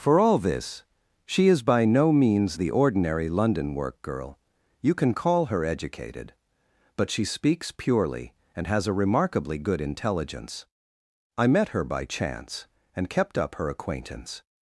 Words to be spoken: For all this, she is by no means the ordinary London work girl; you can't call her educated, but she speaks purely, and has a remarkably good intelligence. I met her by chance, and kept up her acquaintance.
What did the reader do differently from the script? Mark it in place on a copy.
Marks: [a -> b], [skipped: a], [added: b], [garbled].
For all this, she is by no means the ordinary London work girl; you [can't -> can] call her educated, but she speaks purely, and has a remarkably good intelligence. I met her by chance, and kept up her acquaintance.